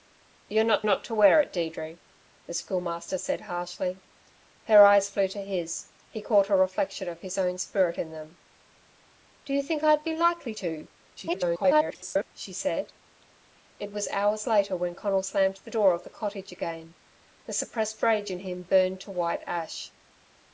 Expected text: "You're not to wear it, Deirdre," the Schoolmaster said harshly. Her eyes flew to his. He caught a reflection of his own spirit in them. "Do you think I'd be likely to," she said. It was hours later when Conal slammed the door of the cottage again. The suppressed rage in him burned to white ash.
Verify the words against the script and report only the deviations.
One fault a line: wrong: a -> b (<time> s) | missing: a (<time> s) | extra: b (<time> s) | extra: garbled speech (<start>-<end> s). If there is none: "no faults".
extra: not (0.8 s)
extra: garbled speech (11.2-12.3 s)